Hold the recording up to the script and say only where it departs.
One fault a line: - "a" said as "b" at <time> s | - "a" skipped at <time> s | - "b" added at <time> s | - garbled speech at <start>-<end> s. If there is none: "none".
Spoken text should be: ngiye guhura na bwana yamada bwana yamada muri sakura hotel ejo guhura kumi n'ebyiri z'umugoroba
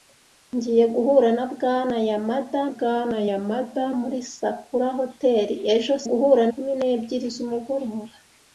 none